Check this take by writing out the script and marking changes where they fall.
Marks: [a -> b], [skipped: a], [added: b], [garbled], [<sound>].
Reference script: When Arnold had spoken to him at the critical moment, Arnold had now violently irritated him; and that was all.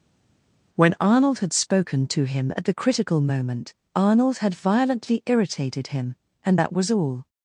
When Arnold had spoken to him at the critical moment, Arnold had [skipped: now] violently irritated him; and that was all.